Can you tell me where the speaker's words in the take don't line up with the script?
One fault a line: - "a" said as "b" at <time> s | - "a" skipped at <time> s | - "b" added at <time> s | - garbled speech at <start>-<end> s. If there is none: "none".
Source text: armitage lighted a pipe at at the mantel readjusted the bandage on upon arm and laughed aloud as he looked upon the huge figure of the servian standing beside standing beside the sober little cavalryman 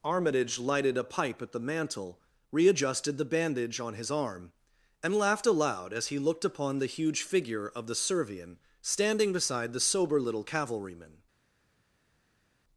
- "at" skipped at 1.5 s
- "upon" said as "his" at 3.9 s
- "standing beside" skipped at 9.7 s